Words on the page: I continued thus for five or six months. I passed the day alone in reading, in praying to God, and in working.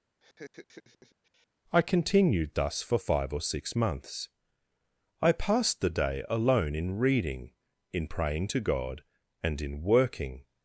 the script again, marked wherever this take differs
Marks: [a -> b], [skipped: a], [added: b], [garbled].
I continued thus for five or six months. I passed the day alone in reading, in praying to God, and in working.